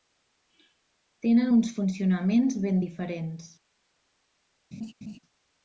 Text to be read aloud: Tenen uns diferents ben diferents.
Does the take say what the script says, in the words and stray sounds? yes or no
no